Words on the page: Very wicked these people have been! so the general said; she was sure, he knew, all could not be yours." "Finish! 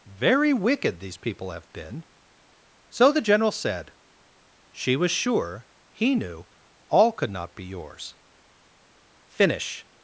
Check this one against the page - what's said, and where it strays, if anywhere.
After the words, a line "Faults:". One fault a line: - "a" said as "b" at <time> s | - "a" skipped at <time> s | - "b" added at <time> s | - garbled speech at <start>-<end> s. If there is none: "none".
Very wicked these people have been! so the general said; she was sure, he knew, all could not be yours." "Finish!
Faults:
none